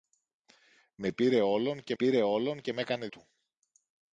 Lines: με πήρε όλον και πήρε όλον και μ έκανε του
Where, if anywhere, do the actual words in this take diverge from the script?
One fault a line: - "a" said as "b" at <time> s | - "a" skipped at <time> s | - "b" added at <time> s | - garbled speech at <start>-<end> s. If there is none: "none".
none